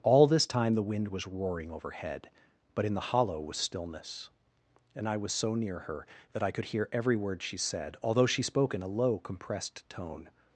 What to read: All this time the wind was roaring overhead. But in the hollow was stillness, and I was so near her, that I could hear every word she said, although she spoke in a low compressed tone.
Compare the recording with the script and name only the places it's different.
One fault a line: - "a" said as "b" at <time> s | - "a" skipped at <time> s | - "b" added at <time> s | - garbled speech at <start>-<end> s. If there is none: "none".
none